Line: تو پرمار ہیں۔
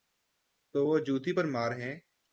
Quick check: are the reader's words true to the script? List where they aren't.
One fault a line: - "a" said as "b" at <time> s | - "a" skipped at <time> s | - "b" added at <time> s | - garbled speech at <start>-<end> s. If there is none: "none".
- "وہ جوتی" added at 0.8 s